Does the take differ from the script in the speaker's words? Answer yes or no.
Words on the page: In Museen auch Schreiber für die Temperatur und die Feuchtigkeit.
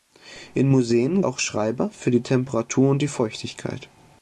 no